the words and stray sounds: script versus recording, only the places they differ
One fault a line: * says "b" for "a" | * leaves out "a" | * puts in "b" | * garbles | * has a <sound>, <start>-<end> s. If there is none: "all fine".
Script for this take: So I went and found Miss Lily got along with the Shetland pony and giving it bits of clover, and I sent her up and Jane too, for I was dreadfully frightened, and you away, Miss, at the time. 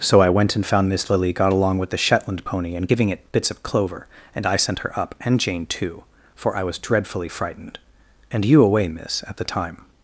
all fine